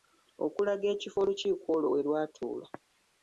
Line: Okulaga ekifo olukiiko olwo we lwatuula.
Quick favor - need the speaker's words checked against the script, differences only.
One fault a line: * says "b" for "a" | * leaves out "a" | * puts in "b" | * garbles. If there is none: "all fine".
all fine